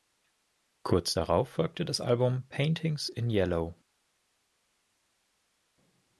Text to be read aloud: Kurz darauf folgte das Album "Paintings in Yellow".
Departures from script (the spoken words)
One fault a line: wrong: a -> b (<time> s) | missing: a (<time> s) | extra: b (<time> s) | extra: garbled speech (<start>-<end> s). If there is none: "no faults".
no faults